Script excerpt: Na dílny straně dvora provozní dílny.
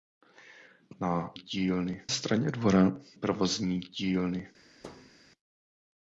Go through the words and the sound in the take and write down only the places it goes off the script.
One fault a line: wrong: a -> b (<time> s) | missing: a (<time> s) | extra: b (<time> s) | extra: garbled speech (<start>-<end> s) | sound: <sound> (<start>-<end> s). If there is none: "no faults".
sound: thud (4.8-5.1 s)